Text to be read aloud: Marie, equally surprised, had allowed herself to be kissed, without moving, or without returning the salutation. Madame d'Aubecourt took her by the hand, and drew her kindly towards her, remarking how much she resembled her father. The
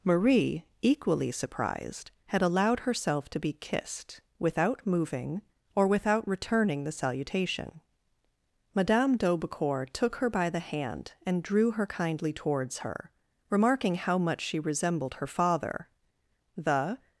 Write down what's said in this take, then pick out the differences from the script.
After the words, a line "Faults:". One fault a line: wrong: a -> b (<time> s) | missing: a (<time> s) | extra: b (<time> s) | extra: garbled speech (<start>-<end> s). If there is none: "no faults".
Marie, equally surprised, had allowed herself to be kissed, without moving, or without returning the salutation. Madame d'Aubecourt took her by the hand, and drew her kindly towards her, remarking how much she resembled her father. The
Faults:
no faults